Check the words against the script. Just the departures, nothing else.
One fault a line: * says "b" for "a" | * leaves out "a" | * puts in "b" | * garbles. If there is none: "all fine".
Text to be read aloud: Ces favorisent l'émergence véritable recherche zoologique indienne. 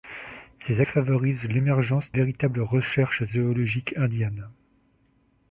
all fine